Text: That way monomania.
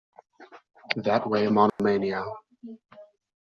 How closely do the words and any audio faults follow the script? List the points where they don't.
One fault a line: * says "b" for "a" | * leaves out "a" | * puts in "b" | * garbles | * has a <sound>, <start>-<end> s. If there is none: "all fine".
* has a dropout, 1.7-1.8 s